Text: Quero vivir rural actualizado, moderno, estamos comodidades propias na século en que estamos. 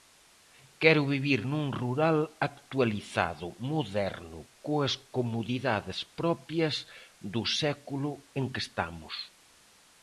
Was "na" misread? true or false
true